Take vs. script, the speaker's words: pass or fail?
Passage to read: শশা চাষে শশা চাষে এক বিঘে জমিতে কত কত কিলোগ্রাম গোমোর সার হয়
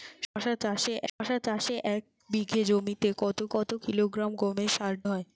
pass